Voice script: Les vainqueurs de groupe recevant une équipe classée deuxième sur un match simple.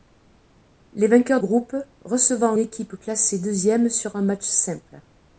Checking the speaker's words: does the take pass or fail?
fail